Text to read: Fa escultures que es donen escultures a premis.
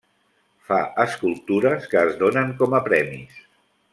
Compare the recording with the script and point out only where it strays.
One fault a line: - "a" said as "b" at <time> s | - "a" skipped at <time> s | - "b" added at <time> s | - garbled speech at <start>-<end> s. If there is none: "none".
- "escultures" said as "com" at 2.6 s